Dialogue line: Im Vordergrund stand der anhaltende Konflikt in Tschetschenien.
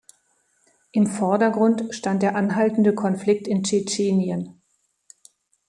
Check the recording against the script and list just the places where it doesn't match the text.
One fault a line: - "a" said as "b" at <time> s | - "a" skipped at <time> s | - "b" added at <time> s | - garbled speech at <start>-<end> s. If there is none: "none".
none